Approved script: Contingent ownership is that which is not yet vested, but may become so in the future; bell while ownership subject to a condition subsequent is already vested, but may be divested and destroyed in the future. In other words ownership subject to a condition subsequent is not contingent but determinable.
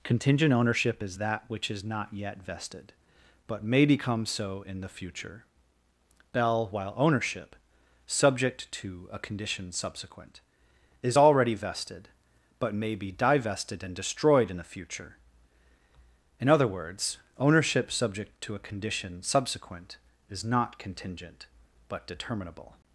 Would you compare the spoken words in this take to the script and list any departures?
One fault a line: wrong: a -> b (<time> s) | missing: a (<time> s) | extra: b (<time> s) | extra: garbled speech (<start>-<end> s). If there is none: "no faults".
no faults